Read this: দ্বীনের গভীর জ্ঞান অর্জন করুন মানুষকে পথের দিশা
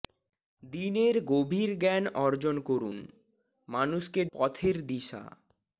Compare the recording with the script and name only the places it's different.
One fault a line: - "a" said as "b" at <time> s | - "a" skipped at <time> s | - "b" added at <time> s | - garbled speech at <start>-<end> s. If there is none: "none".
none